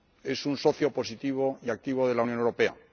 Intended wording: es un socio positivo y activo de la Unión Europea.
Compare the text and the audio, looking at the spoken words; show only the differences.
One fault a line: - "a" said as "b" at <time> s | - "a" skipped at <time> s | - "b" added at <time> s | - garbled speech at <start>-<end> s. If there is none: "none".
none